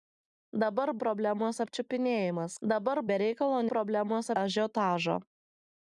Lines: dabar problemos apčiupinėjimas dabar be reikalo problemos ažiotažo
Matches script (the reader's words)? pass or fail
pass